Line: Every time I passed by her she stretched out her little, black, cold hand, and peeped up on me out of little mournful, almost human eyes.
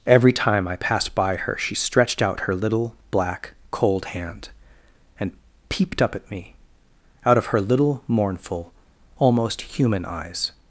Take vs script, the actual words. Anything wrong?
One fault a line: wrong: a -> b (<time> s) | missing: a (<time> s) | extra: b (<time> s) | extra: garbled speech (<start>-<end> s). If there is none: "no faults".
wrong: on -> at (6.2 s)
extra: her (7.5 s)